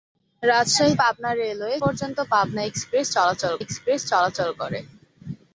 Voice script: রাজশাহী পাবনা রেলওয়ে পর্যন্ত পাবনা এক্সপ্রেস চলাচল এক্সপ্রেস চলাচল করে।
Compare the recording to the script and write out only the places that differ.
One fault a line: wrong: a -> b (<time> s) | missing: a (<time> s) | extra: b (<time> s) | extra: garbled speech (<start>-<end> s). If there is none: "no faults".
no faults